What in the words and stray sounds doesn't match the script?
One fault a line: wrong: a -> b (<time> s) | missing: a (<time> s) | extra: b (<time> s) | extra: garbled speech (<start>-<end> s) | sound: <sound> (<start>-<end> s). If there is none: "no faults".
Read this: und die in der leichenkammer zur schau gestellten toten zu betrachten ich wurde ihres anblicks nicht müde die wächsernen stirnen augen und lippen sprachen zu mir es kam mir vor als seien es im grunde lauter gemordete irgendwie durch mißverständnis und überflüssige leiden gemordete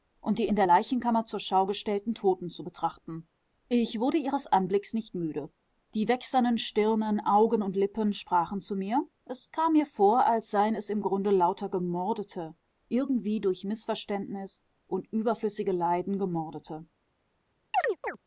sound: chirp (17.7-18.2 s)